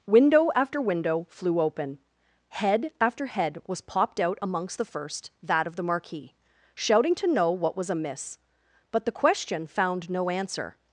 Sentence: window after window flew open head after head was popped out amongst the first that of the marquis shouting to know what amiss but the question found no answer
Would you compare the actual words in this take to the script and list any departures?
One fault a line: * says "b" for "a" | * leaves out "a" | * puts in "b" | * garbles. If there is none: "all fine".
* puts in "was"